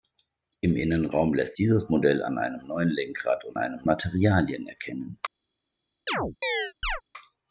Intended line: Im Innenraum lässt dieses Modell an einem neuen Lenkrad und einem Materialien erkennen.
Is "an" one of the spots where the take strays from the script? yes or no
no